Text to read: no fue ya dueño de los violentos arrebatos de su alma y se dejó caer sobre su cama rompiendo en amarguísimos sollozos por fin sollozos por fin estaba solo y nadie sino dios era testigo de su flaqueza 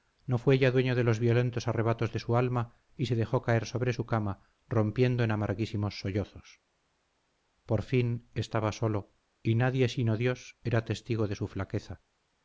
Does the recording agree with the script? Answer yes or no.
no